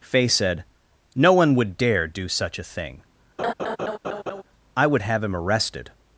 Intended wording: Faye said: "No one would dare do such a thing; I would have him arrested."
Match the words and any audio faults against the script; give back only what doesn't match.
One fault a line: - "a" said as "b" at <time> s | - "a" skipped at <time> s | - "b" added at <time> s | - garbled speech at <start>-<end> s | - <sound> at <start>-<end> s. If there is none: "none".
- laugh at 3.4-4.4 s